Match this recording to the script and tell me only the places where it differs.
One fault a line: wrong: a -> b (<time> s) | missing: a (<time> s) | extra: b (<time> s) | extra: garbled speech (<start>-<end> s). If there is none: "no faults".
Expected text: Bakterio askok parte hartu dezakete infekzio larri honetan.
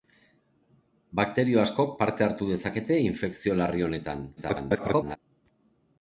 extra: garbled speech (4.4-5.2 s)